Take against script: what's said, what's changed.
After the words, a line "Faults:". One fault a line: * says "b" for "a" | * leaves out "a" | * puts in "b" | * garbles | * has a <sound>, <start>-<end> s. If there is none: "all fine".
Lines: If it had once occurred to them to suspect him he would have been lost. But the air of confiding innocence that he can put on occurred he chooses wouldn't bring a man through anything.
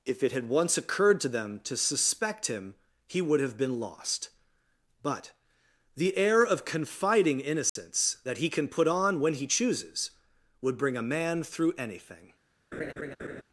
If it had once occurred to them to suspect him he would have been lost. But the air of confiding innocence that he can put on when he chooses would bring a man through anything.
Faults:
* has a dropout, 7.7-7.8 s
* says "when" for "occurred"
* says "would" for "wouldn't"
* has a laugh, 12.7-13.4 s